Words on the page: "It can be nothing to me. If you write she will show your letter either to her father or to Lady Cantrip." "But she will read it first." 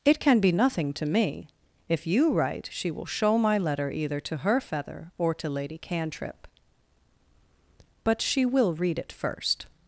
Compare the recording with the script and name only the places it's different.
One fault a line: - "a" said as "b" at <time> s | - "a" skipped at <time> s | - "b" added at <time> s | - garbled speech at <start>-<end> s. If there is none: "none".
- "your" said as "my" at 3.4 s
- "father" said as "feather" at 4.6 s